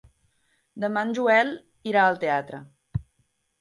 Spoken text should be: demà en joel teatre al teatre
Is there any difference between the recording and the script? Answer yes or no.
yes